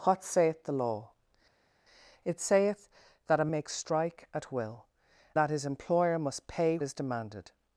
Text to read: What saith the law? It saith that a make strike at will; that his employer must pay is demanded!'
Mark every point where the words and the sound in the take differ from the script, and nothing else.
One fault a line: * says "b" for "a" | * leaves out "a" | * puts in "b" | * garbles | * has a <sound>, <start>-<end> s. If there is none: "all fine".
all fine